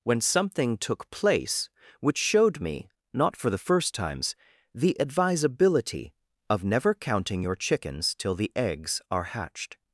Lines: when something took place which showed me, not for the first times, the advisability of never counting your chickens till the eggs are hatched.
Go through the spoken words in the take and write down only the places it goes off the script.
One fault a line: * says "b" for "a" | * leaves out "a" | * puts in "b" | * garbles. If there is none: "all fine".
all fine